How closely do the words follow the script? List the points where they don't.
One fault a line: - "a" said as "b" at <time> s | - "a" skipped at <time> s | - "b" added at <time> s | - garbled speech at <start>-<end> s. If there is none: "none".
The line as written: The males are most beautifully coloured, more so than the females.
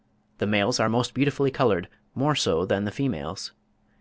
none